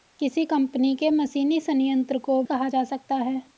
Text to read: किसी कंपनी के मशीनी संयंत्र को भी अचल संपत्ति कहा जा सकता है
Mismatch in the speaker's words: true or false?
true